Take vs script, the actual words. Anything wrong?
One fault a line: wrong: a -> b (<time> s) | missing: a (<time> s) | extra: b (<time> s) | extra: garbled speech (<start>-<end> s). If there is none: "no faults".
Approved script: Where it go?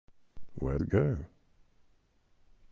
no faults